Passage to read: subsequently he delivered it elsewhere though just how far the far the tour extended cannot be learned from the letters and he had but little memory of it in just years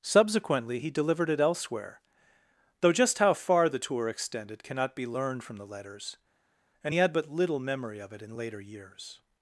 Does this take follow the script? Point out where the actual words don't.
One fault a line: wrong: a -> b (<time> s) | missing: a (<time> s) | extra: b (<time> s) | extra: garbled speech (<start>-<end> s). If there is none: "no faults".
missing: far the (3.8 s)
wrong: just -> later (8.4 s)